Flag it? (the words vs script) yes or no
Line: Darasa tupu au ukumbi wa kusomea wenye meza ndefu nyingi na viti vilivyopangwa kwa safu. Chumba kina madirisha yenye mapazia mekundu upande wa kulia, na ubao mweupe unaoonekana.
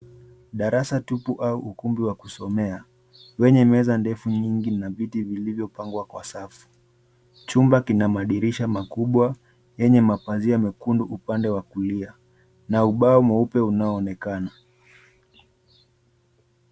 yes